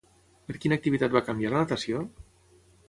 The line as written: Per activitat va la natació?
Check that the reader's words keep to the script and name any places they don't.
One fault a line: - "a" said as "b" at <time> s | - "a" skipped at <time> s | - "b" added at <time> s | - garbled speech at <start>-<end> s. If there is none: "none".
- "quina" added at 0.6 s
- "canviar" added at 1.3 s